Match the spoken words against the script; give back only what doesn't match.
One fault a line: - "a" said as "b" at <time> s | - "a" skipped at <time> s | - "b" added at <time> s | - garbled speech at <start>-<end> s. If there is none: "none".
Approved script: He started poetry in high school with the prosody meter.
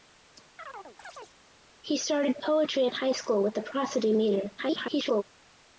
- garbled speech at 4.6-5.2 s